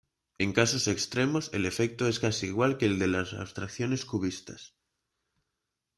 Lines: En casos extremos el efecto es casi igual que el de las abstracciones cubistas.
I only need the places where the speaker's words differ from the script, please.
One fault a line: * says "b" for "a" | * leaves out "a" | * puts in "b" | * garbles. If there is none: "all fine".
all fine